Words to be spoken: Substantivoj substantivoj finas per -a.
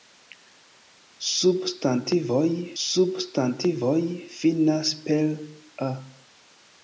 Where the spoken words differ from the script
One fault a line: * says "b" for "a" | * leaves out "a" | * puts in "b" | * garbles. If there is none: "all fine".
all fine